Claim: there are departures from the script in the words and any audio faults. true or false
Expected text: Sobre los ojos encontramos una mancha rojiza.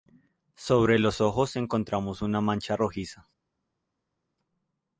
false